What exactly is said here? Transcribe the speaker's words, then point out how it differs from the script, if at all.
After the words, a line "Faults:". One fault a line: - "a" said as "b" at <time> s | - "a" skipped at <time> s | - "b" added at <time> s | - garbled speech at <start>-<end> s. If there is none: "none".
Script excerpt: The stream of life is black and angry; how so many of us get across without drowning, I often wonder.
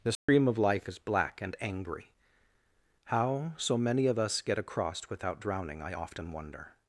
The stream of life is black and angry; how so many of us get across without drowning, I often wonder.
Faults:
none